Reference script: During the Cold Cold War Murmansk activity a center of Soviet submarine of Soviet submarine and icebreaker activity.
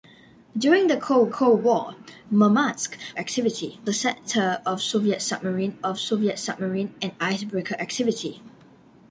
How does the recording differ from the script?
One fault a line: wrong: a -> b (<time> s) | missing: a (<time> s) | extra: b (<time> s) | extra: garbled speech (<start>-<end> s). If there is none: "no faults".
no faults